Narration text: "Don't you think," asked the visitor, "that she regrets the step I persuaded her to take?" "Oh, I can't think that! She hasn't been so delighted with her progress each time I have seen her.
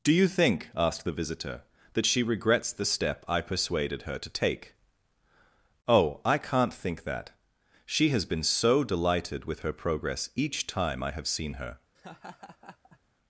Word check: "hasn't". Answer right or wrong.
wrong